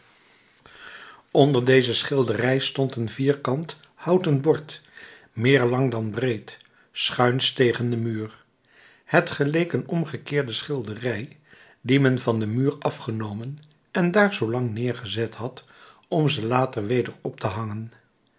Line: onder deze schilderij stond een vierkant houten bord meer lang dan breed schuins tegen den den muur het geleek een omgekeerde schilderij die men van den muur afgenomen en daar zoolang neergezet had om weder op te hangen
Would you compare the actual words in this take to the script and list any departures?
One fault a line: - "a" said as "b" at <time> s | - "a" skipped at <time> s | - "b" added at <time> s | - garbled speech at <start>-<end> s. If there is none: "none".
- "den" skipped at 8.0 s
- "ze later" added at 16.3 s